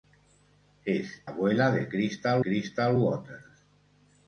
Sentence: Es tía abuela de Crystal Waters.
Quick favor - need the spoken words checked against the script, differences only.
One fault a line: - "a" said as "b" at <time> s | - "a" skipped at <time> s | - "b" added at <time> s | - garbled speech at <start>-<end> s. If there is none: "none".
- "tía" skipped at 1.3 s
- "Crystal" added at 2.4 s